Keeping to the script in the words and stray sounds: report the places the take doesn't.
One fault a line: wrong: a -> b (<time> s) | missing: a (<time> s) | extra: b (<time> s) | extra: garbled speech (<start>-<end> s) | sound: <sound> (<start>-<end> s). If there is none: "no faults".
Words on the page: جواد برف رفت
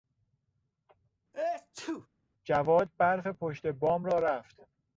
sound: sneeze (1.3-2.1 s)
extra: پشت بام را (3.3 s)